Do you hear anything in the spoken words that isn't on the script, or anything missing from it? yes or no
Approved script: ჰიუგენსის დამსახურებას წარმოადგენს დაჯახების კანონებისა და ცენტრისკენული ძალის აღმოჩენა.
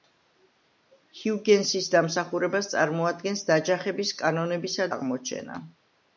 yes